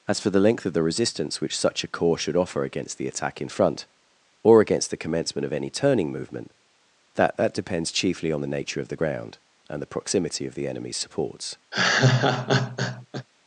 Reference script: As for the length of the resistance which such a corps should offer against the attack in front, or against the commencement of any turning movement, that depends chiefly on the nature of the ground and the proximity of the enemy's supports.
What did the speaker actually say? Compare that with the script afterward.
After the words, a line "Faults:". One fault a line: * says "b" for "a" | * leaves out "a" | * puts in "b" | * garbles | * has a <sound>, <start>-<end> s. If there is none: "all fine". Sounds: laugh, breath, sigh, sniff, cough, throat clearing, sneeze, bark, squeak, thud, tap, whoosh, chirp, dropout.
As for the length of the resistance which such a corps should offer against the attack in front, or against the commencement of any turning movement, that that depends chiefly on the nature of the ground and the proximity of the enemy's supports.
Faults:
* puts in "that"
* has a laugh, 11.7-13.3 s